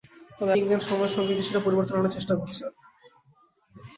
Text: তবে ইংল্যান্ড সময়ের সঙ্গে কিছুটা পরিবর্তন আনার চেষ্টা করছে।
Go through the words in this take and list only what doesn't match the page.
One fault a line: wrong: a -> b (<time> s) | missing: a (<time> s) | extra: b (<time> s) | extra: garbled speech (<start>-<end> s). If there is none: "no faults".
no faults